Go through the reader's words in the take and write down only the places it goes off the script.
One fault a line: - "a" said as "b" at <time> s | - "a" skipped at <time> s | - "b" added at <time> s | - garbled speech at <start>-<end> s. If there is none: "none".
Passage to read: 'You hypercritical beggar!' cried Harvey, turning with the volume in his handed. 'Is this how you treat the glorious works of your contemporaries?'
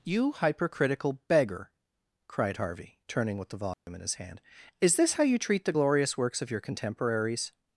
- "handed" said as "hand" at 4.1 s